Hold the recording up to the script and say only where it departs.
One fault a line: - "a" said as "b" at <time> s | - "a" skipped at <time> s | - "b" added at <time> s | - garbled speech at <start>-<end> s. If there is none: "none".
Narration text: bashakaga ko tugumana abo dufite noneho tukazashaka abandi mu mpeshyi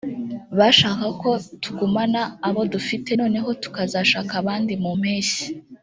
none